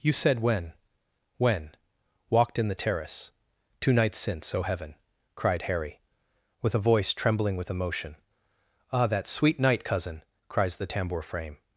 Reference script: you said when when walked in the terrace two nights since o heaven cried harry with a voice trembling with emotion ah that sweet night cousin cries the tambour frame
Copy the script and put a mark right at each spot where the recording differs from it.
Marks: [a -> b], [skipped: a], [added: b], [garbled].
you said when when walked in the terrace two nights since o heaven cried harry with a voice trembling with emotion ah that sweet night cousin cries the tambour frame